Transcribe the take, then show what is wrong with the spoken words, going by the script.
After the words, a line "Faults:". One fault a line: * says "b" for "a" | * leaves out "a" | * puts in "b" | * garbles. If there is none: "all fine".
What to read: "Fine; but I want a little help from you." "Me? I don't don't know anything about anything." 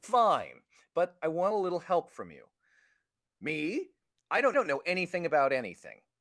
"Fine; but I want a little help from you." "Me? I don't don't know anything about anything."
Faults:
all fine